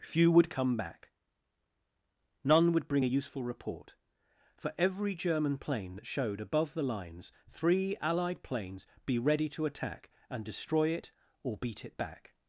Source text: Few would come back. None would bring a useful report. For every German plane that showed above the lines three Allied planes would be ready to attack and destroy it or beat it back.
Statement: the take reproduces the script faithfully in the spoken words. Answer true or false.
false